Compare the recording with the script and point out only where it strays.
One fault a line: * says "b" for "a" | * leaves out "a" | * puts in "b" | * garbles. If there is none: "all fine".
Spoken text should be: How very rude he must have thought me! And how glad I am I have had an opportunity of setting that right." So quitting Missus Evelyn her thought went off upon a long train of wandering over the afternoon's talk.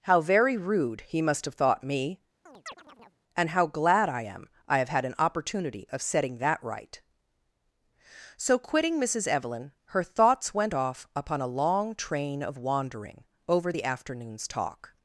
* says "thoughts" for "thought"